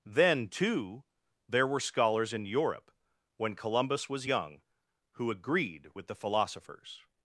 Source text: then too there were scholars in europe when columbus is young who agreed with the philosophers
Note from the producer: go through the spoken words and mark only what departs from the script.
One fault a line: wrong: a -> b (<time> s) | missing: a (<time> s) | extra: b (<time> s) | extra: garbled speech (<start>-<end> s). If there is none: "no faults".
wrong: is -> was (4.1 s)